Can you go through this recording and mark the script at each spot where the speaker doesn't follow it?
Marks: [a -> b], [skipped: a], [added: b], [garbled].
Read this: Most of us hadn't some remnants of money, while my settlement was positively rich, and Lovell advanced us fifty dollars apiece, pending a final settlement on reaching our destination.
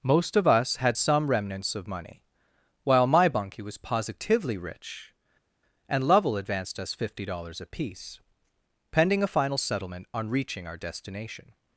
Most of us [hadn't -> had] some remnants of money, while my [settlement -> bunkie] was positively rich, and Lovell advanced us fifty dollars apiece, pending a final settlement on reaching our destination.